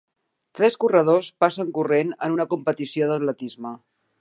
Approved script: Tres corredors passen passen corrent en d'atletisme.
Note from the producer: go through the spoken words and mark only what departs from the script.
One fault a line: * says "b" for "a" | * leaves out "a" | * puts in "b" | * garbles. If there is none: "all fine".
* leaves out "passen"
* puts in "una competició"